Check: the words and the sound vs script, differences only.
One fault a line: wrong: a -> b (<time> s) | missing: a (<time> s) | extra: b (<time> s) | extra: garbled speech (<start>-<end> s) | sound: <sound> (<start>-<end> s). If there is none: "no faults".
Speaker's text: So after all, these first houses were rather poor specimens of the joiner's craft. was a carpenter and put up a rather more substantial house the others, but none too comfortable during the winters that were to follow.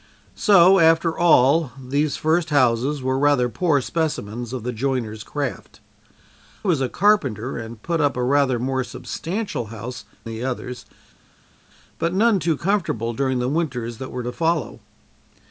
no faults